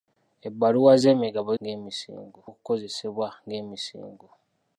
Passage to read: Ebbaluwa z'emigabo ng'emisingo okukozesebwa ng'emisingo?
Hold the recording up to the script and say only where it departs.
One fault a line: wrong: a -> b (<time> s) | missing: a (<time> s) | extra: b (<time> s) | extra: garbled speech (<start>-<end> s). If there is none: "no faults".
no faults